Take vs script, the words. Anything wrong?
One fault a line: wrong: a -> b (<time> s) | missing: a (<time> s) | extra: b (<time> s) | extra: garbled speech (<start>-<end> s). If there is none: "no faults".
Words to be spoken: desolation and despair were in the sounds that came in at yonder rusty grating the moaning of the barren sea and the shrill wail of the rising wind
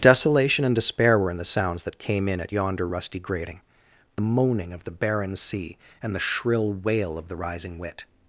wrong: wind -> wit (7.8 s)